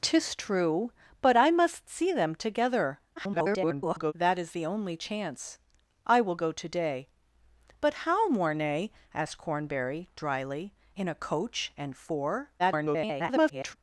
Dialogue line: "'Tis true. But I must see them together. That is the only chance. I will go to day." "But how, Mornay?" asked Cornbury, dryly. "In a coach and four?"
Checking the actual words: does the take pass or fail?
fail